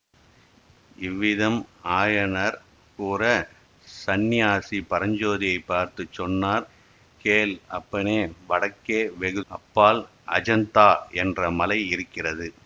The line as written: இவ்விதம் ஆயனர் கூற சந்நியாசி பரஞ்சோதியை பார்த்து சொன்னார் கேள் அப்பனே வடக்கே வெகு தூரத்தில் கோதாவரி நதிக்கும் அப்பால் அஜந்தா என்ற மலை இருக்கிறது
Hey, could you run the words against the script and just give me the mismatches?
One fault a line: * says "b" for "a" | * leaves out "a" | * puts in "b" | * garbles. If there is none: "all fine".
* leaves out "தூரத்தில் கோதாவரி நதிக்கும்"